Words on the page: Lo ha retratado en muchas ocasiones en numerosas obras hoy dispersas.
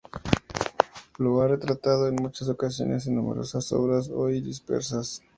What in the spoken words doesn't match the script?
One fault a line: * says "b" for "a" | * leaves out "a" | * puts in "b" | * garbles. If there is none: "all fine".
all fine